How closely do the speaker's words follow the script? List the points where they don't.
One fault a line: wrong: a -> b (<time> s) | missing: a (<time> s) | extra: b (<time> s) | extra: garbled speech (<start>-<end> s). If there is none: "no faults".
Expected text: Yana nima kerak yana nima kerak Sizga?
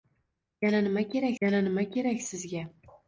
no faults